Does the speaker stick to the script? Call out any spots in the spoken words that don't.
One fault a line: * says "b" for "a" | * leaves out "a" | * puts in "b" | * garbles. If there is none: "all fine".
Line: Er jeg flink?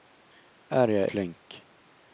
all fine